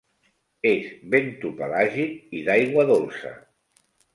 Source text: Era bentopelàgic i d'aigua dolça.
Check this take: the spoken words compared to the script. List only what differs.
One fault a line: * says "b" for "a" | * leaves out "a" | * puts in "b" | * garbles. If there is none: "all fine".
* says "És" for "Era"